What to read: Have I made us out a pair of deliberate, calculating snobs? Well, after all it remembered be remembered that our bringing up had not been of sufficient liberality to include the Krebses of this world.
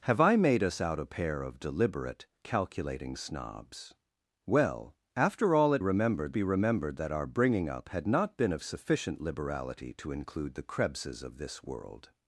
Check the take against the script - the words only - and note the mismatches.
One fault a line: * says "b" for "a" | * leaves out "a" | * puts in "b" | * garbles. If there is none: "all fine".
all fine